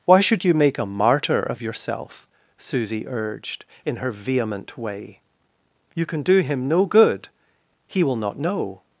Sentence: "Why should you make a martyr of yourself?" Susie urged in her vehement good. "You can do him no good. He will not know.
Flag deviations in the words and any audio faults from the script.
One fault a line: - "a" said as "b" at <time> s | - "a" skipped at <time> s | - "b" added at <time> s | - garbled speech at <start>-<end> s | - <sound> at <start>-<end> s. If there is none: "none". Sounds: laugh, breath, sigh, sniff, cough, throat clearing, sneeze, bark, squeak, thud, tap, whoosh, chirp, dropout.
- "good" said as "way" at 4.8 s